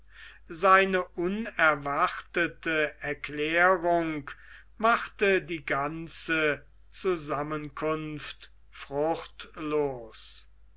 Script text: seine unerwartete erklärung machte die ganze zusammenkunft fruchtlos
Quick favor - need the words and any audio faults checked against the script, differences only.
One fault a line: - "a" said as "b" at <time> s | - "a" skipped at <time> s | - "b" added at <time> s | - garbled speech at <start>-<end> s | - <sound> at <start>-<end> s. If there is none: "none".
none